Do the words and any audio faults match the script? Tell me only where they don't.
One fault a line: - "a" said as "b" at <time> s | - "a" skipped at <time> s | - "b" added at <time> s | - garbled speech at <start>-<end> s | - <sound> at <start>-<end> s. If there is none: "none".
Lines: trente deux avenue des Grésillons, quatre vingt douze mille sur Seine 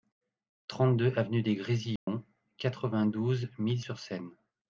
- dropout at 2.0-2.1 s